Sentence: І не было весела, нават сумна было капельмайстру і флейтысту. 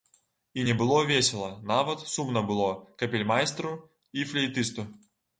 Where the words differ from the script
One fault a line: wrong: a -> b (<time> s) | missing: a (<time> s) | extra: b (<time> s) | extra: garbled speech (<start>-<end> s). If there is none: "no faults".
no faults